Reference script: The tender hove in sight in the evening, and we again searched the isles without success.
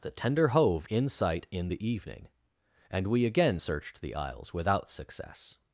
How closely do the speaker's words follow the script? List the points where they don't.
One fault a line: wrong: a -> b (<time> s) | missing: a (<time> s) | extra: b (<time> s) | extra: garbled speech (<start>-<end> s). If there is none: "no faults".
no faults